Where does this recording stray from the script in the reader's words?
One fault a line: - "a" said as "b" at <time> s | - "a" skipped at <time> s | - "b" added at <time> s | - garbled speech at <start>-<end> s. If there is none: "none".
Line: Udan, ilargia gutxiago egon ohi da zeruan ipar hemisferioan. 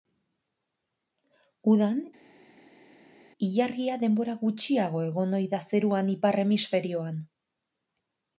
- "denbora" added at 4.1 s